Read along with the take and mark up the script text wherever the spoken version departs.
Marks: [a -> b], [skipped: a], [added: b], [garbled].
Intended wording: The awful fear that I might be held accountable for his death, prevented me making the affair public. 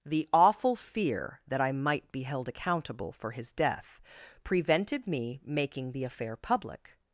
The awful fear that I might be held accountable for his death, prevented me making the affair public.